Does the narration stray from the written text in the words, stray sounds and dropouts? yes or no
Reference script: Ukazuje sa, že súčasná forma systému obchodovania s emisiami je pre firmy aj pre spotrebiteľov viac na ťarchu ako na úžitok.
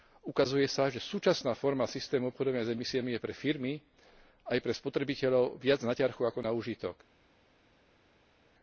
no